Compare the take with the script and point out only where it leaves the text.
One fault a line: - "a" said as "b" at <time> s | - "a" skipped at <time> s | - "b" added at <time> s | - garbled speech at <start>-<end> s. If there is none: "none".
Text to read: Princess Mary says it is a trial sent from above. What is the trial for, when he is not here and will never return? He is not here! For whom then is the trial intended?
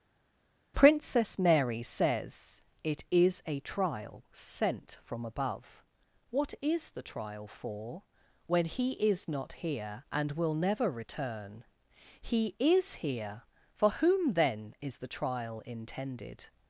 - "not" skipped at 13.0 s